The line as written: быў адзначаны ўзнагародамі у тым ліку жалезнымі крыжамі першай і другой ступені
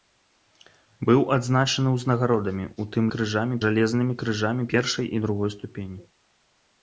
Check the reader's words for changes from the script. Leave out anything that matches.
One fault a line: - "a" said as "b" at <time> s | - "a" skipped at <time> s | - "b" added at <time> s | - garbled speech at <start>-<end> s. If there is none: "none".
- "ліку" said as "крыжамі" at 3.2 s